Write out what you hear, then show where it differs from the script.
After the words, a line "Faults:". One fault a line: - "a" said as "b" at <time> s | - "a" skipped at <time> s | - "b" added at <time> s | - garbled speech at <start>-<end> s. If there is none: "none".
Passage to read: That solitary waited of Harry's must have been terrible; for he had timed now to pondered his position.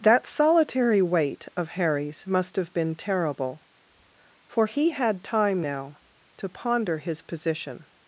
That solitary wait of Harry's must have been terrible; for he had time now to ponder his position.
Faults:
- "waited" said as "wait" at 1.0 s
- "timed" said as "time" at 5.2 s
- "pondered" said as "ponder" at 6.5 s